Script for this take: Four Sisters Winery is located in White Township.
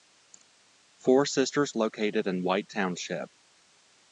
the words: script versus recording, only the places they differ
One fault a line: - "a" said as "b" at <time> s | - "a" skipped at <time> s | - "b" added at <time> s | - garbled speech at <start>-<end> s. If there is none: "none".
- "Winery is" skipped at 1.7 s